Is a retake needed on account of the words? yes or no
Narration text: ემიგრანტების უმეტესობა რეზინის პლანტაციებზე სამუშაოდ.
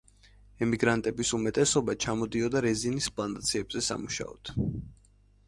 yes